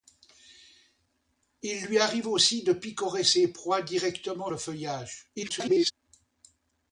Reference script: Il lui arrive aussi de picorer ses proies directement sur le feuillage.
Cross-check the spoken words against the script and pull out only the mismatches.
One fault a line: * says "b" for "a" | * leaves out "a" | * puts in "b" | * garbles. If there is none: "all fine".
* leaves out "sur"
* garbles